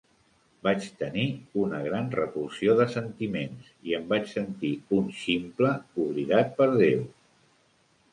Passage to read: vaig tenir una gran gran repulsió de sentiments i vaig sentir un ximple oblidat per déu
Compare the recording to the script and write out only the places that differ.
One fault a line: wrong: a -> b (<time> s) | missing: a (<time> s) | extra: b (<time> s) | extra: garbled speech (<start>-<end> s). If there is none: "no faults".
missing: gran (2.1 s)
extra: em (4.0 s)